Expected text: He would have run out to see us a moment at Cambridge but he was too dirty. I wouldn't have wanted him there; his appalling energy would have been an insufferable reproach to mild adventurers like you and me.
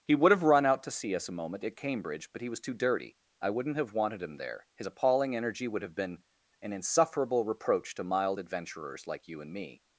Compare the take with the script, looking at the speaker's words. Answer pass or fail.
pass